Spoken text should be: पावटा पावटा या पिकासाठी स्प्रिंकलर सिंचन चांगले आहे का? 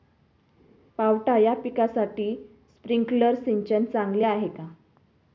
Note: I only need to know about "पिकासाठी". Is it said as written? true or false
true